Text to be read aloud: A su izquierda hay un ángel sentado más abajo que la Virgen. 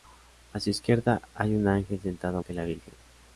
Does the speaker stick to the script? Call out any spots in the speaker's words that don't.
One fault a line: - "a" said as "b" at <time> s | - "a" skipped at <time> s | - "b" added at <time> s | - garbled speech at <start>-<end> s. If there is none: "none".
- "más abajo" skipped at 2.4 s